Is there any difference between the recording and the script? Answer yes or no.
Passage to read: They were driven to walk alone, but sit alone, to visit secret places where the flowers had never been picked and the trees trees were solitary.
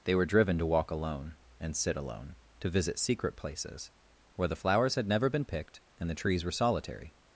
yes